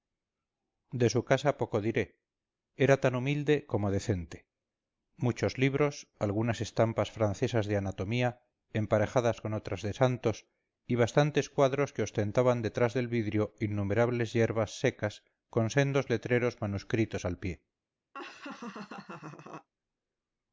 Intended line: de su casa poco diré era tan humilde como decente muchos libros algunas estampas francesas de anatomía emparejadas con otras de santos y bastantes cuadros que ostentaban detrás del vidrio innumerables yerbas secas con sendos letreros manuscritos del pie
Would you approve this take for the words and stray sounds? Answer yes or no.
no